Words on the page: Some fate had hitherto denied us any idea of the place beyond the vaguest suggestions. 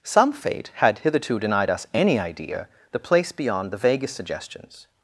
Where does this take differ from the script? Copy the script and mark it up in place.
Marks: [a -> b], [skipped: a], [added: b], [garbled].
Some fate had hitherto denied us any idea [skipped: of] the place beyond the vaguest suggestions.